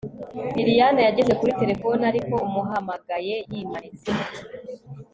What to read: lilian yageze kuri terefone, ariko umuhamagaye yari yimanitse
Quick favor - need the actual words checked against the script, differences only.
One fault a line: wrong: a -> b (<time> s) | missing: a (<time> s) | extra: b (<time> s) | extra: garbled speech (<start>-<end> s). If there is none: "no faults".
missing: yari (3.4 s)